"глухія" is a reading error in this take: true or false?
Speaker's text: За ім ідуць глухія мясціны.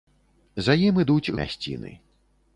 true